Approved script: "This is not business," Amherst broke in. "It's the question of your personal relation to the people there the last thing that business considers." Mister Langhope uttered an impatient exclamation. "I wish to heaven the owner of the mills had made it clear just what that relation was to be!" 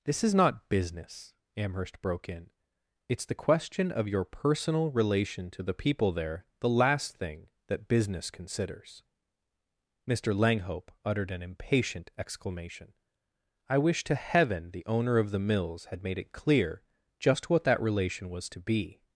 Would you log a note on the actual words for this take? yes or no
no